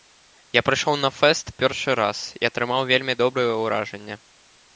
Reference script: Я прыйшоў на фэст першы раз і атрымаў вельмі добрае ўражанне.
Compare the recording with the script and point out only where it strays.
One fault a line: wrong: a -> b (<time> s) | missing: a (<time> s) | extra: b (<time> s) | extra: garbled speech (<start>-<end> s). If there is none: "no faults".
no faults